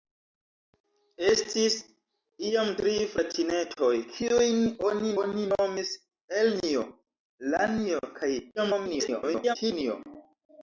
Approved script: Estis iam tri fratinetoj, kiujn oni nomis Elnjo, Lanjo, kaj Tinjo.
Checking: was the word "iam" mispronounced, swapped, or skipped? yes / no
no